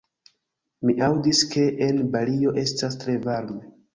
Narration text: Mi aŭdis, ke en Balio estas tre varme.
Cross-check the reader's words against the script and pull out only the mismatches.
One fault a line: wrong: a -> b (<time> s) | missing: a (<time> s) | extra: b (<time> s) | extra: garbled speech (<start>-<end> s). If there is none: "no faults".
no faults